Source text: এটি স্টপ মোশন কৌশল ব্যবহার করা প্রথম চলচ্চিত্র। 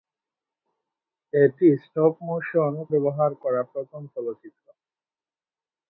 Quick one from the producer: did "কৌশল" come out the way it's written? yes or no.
no